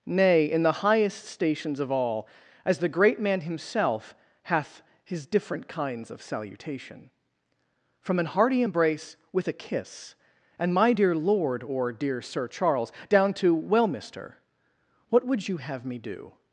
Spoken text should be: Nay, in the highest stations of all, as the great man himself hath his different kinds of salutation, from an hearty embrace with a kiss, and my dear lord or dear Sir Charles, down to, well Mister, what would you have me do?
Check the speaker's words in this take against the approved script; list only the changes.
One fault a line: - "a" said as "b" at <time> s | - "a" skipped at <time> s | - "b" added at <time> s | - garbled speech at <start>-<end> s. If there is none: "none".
none